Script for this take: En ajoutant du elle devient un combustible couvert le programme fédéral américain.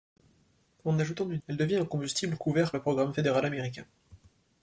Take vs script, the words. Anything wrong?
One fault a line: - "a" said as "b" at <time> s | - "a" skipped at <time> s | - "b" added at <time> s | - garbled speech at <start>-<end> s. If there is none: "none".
none